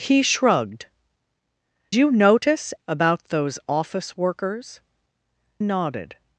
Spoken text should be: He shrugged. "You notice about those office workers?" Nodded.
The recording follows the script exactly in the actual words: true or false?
true